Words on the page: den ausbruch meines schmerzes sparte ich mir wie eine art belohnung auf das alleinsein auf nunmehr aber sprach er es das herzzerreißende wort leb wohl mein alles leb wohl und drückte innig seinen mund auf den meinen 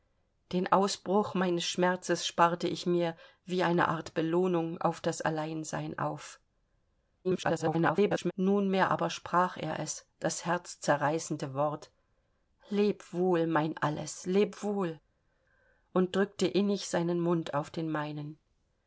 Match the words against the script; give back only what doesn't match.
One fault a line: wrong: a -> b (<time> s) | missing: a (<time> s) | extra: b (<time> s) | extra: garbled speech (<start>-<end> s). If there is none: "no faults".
extra: garbled speech (7.2-8.3 s)